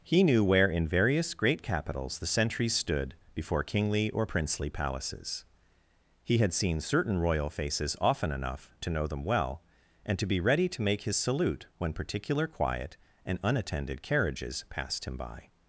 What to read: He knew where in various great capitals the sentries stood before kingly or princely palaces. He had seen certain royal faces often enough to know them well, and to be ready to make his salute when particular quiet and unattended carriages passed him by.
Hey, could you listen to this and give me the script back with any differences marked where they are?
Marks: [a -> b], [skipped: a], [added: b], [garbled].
He knew where in various great capitals the sentries stood before kingly or princely palaces. He had seen certain royal faces often enough to know them well, and to be ready to make his salute when particular quiet and unattended carriages passed him by.